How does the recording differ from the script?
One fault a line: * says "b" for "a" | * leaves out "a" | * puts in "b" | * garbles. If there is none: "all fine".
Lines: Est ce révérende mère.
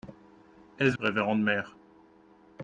all fine